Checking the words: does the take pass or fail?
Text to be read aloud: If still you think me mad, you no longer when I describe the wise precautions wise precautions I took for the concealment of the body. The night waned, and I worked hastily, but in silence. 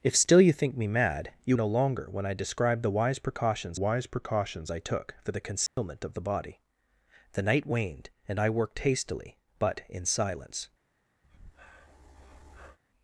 pass